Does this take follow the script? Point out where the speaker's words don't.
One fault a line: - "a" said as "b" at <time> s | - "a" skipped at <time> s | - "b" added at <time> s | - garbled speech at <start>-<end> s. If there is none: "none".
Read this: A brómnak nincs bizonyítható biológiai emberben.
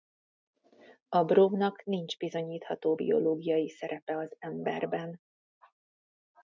- "szerepe az" added at 3.7 s